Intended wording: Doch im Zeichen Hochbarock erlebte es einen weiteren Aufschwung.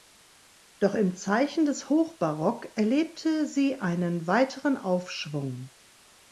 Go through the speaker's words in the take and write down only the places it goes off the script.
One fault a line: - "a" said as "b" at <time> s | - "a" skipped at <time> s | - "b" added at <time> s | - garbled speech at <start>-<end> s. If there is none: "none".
- "des" added at 1.6 s
- "es" said as "sie" at 3.5 s